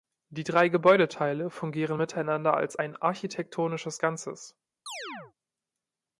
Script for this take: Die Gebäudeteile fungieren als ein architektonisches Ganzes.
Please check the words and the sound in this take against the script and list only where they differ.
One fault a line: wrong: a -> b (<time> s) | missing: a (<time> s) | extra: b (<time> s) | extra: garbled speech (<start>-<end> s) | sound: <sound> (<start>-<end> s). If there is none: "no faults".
extra: drei (0.4 s)
extra: miteinander (2.0 s)
sound: chirp (4.9-5.3 s)